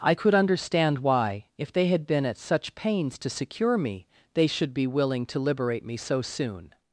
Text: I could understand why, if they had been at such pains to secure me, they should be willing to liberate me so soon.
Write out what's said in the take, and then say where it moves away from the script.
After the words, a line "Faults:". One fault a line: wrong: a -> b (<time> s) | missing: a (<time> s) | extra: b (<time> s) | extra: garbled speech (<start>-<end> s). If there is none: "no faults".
I could understand why, if they had been at such pains to secure me, they should be willing to liberate me so soon.
Faults:
no faults